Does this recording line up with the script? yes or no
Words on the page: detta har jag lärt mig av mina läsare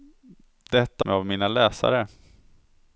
no